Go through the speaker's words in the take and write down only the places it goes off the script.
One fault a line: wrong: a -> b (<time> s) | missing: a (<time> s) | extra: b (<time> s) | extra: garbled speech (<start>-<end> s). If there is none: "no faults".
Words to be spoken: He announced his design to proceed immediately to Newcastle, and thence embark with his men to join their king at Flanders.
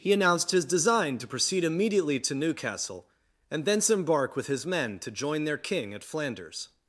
no faults